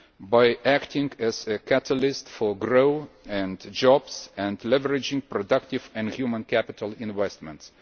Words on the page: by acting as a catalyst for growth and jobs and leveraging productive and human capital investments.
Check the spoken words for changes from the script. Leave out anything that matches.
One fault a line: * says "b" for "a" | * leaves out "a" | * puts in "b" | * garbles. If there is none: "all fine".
all fine